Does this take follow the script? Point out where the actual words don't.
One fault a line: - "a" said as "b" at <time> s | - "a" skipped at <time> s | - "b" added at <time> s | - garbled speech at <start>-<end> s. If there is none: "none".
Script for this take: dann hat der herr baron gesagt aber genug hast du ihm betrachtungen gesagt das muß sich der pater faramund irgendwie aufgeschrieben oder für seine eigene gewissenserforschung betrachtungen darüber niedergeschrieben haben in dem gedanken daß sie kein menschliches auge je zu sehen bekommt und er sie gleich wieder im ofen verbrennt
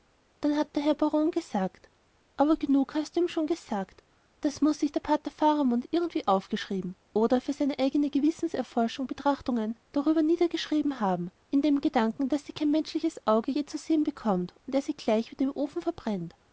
- "betrachtungen" said as "schon" at 3.3 s